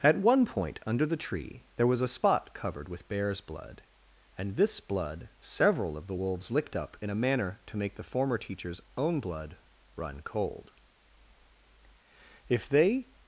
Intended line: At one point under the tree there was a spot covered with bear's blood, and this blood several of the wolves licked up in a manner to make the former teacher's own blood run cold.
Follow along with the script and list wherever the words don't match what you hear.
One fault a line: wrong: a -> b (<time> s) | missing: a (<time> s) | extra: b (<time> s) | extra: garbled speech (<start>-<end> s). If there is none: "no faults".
extra: If they (12.5 s)